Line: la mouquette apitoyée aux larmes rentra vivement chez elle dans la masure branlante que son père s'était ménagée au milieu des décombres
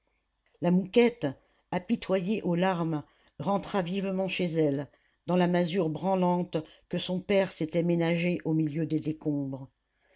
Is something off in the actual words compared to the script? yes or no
no